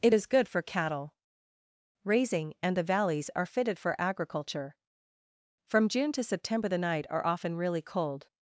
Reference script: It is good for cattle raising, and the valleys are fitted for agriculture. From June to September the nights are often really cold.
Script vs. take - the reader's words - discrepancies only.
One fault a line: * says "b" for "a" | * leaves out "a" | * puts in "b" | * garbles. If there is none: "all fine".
* says "night" for "nights"